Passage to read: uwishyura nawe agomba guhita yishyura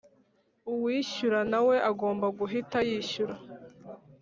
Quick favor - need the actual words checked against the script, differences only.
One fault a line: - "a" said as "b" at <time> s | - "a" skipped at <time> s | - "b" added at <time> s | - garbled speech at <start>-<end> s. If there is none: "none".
none